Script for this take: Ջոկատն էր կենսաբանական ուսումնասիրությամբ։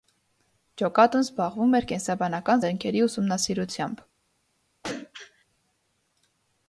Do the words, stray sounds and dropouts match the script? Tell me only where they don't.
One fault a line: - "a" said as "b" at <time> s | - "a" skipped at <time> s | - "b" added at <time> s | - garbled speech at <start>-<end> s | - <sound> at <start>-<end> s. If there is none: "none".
- "զբաղվում" added at 1.2 s
- "զենքերի" added at 2.6 s
- throat clearing at 4.8-5.4 s